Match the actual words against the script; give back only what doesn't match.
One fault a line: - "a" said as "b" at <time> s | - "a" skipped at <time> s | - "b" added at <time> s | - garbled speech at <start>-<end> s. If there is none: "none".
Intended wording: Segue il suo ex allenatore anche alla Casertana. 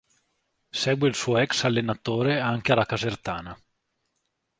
none